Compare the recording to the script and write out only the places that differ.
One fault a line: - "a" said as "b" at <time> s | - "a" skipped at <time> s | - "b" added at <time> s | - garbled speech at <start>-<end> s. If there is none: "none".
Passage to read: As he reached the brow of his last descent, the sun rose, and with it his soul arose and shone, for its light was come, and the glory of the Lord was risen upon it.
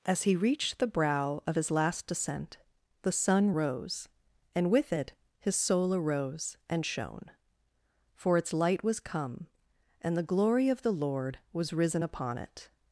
none